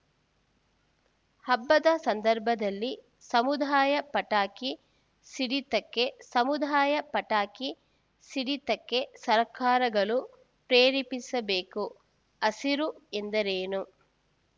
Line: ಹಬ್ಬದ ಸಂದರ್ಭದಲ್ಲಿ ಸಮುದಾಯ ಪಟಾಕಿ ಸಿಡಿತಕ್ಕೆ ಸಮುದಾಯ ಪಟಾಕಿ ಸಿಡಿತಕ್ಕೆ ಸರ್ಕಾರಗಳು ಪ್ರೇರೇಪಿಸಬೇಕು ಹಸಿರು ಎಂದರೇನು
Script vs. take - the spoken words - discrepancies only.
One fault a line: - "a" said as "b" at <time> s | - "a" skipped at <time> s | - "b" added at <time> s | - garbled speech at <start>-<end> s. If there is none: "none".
none